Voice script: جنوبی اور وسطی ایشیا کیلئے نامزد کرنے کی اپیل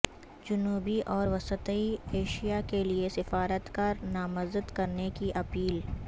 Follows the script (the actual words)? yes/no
no